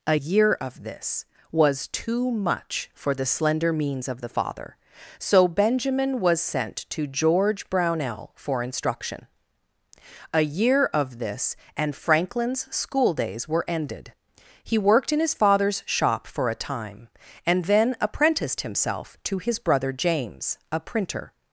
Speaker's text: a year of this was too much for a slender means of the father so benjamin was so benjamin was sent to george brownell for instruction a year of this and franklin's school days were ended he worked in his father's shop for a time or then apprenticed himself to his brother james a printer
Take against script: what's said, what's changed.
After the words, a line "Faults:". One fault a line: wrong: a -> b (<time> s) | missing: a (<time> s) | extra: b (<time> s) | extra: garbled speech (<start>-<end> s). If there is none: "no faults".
a year of this was too much for the slender means of the father so benjamin was sent to george brownell for instruction a year of this and franklin's school days were ended he worked in his father's shop for a time and then apprenticed himself to his brother james a printer
Faults:
wrong: a -> the (3.1 s)
missing: so benjamin was (6.4 s)
wrong: or -> and (17.4 s)